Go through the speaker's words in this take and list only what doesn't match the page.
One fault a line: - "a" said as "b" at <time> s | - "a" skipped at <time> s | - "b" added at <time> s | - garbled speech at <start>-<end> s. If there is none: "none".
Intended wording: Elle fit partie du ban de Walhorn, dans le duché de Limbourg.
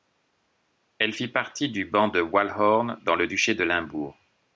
none